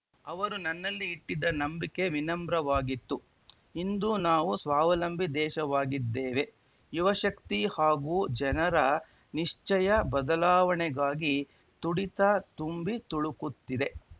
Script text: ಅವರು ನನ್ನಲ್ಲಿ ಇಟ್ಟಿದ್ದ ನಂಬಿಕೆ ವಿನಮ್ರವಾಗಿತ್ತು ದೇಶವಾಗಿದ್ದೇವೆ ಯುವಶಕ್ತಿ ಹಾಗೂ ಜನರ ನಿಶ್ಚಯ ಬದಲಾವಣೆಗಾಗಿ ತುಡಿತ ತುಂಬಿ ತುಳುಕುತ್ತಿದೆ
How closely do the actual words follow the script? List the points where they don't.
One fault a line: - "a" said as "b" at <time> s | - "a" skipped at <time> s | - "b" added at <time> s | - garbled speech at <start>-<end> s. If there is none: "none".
- "ಇಂದು ನಾವು ಸ್ವಾವಲಂಬಿ" added at 3.8 s